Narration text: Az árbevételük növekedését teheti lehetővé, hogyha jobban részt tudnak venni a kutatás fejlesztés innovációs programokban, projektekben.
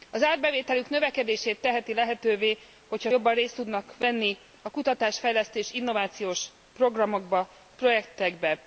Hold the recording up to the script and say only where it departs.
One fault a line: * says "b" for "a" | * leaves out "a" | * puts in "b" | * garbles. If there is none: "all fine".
all fine